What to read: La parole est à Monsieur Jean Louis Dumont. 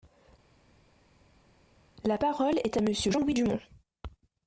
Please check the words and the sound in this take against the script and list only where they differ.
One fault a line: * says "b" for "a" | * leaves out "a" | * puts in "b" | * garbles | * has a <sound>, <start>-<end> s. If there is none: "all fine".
all fine